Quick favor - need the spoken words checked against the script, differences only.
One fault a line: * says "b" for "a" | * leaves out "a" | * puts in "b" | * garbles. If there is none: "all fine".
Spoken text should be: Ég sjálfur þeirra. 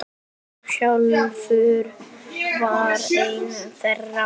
* puts in "var einn"